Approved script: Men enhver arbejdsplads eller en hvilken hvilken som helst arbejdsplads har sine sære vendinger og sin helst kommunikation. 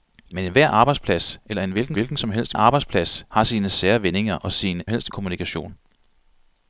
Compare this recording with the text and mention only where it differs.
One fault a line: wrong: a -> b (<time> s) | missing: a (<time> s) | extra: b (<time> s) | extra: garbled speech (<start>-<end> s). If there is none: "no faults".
no faults